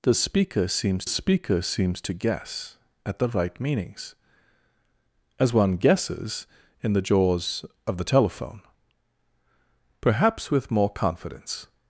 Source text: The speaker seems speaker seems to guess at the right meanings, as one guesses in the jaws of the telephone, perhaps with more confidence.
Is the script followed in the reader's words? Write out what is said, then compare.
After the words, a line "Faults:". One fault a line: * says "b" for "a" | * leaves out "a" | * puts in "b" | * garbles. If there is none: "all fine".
The speaker seems speaker seems to guess at the right meanings, as one guesses in the jaws of the telephone, perhaps with more confidence.
Faults:
all fine